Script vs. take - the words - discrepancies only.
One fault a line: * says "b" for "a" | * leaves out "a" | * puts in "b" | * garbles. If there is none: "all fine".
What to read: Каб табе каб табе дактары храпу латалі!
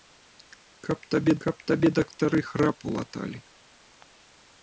all fine